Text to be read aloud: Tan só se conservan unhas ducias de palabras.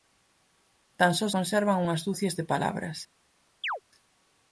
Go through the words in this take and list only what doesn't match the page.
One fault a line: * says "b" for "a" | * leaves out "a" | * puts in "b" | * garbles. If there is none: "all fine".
* leaves out "se"